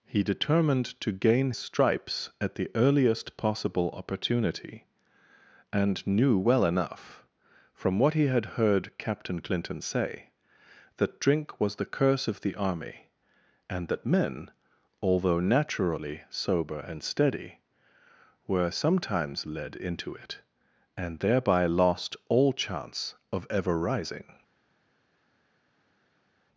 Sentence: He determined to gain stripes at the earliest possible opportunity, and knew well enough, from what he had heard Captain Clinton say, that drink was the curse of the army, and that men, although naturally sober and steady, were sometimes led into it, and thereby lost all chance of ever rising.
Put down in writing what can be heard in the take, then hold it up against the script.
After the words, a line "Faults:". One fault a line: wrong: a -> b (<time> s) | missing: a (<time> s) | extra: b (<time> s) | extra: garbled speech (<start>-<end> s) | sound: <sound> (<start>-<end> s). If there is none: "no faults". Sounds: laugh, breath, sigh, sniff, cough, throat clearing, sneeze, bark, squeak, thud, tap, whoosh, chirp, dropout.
He determined to gain stripes at the earliest possible opportunity, and knew well enough, from what he had heard Captain Clinton say, that drink was the curse of the army, and that men, although naturally sober and steady, were sometimes led into it, and thereby lost all chance of ever rising.
Faults:
no faults